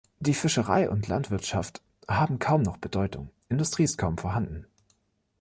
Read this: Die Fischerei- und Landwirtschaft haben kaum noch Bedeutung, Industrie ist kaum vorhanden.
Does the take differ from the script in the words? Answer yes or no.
no